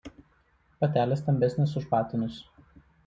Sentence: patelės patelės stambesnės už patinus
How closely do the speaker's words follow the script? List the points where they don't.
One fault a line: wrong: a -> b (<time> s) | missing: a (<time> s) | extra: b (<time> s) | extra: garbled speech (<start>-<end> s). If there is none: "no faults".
missing: patelės (1.2 s)